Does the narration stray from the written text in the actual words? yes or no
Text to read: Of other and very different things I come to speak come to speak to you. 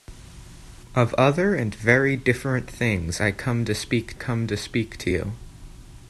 no